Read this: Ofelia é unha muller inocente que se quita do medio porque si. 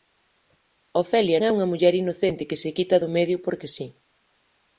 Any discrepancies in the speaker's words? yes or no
no